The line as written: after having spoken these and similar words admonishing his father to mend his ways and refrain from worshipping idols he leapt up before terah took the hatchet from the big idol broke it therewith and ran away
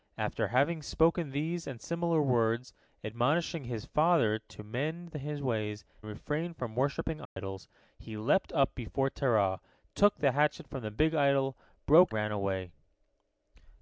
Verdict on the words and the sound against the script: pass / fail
fail